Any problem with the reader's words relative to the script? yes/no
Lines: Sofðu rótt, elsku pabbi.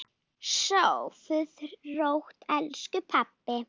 no